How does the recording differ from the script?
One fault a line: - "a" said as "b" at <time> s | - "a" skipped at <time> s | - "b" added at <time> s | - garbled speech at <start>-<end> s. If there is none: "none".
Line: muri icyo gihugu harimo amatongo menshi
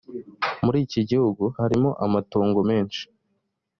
- "icyo" said as "iki" at 0.8 s